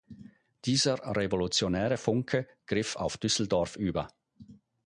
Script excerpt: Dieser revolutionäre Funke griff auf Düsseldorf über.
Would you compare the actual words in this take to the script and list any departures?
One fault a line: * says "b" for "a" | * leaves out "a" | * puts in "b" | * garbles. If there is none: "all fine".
all fine